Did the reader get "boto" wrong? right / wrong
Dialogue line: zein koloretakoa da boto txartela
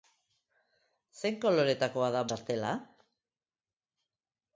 wrong